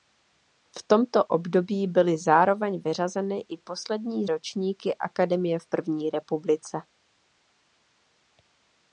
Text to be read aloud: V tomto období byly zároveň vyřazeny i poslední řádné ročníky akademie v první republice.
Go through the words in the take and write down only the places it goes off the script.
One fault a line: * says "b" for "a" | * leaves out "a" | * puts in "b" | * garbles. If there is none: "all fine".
* leaves out "řádné"